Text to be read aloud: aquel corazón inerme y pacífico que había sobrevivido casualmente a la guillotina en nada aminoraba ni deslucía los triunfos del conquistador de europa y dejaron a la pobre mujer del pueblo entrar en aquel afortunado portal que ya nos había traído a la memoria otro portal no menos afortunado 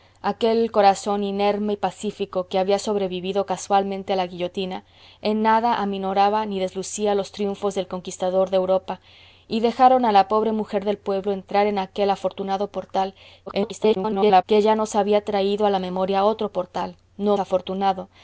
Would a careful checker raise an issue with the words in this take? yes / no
yes